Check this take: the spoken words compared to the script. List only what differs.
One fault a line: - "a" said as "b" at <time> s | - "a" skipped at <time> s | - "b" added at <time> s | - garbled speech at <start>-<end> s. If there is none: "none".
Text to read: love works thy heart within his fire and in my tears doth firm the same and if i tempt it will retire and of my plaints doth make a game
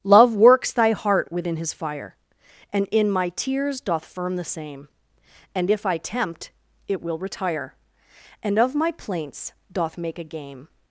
none